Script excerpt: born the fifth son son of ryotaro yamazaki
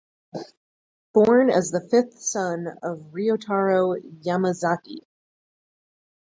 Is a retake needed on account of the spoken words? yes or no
yes